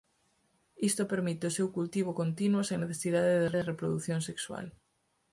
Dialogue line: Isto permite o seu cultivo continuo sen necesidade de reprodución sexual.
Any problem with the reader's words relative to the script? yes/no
yes